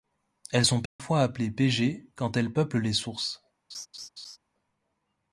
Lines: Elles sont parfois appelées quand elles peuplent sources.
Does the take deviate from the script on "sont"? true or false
false